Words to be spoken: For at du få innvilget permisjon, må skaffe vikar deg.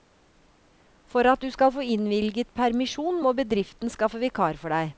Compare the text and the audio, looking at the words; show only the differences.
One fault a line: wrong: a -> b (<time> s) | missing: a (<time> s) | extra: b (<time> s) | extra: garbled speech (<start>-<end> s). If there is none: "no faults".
extra: skal (1.5 s)
extra: bedriften (3.4 s)
extra: for (4.6 s)